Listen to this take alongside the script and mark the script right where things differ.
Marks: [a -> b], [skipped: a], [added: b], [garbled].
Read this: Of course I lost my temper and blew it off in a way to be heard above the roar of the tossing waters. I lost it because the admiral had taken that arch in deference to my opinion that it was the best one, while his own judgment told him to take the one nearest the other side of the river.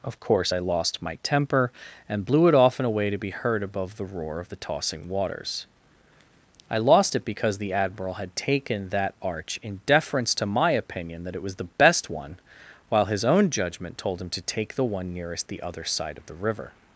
Of course I lost my temper and blew it off in a way to be heard above the roar of the tossing waters. I lost it because the admiral had taken that arch in deference to my opinion that it was the best one, while his own judgment told him to take the one nearest the other side of the river.